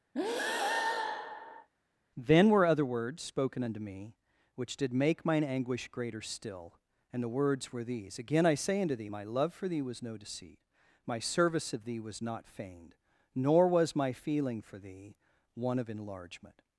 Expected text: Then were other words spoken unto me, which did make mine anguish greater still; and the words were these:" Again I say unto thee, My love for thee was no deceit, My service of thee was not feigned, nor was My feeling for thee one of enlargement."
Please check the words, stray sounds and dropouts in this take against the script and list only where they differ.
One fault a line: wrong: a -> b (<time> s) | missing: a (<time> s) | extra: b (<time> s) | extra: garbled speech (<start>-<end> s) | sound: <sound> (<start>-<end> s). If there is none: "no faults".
sound: breath (0.1-1.7 s)